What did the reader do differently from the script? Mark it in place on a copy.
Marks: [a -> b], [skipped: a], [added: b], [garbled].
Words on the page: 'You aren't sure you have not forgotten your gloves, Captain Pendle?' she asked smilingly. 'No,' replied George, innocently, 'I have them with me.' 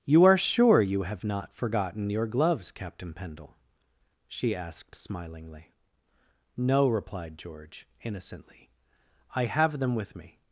'You [aren't -> are] sure you have not forgotten your gloves, Captain Pendle?' she asked smilingly. 'No,' replied George, innocently, 'I have them with me.'